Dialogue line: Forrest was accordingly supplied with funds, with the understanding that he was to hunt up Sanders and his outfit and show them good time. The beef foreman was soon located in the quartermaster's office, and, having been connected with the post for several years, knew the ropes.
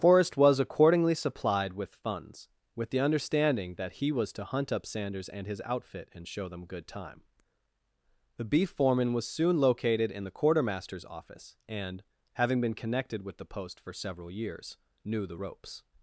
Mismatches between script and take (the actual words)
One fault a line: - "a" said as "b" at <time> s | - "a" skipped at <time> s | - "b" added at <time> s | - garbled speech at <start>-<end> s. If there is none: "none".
none